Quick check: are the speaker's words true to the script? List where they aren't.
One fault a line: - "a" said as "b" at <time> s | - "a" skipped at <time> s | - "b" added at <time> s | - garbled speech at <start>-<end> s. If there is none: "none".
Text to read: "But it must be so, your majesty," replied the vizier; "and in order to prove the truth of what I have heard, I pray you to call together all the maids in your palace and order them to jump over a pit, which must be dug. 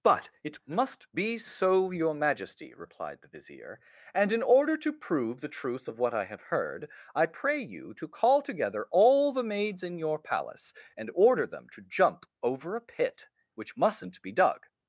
- "must" said as "mustn't" at 13.8 s